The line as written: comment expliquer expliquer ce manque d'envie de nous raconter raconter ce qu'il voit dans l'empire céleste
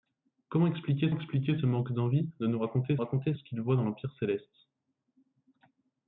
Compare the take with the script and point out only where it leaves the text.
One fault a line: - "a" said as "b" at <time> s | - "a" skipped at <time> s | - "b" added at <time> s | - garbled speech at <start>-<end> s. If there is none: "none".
none